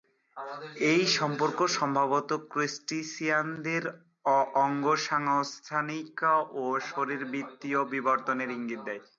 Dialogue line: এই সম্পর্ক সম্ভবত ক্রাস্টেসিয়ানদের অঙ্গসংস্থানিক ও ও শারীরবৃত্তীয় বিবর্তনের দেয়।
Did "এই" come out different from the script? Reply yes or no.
no